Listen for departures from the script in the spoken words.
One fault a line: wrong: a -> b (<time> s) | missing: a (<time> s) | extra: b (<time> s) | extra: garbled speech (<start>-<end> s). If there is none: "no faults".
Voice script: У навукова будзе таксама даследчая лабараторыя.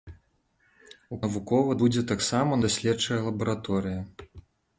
no faults